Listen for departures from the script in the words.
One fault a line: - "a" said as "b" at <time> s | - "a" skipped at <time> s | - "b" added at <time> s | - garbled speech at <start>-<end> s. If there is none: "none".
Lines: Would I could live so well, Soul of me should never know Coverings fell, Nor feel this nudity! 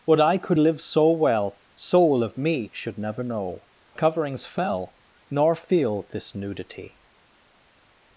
none